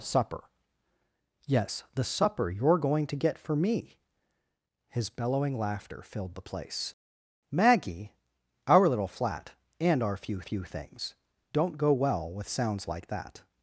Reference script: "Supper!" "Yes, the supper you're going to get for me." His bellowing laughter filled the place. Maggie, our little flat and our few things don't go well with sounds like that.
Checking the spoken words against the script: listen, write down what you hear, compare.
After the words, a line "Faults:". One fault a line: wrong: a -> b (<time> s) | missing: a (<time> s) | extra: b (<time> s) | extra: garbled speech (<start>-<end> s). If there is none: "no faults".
"Supper!" "Yes, the supper you're going to get for me." His bellowing laughter filled the place. Maggie, our little flat and our few few things don't go well with sounds like that.
Faults:
extra: few (10.4 s)